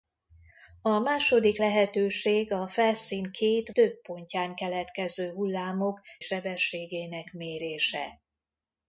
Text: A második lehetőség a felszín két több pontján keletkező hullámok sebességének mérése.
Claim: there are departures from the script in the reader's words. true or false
false